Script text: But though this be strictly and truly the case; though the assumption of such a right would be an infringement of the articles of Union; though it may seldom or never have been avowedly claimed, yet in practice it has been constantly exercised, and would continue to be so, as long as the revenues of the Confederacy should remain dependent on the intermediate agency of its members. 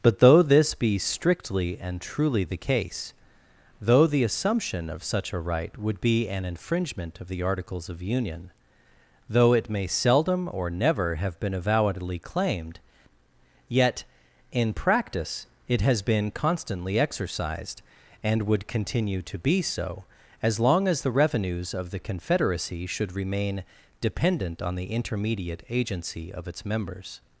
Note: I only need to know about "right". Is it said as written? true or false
true